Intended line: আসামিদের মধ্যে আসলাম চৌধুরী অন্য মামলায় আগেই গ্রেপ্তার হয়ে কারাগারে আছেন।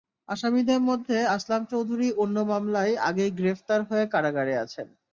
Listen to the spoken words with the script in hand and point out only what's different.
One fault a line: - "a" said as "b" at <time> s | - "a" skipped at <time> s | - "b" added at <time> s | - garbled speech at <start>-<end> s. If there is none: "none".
none